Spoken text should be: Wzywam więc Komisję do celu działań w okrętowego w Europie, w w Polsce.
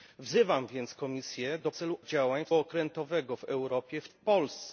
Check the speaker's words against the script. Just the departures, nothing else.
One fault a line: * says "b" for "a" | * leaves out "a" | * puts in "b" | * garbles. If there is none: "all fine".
all fine